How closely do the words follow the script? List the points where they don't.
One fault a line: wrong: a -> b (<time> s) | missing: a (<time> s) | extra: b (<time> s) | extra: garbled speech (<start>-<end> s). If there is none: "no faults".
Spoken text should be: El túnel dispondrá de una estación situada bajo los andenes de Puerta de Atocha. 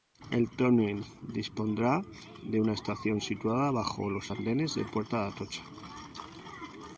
no faults